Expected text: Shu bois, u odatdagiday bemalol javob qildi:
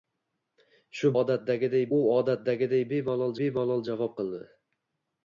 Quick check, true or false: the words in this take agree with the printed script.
false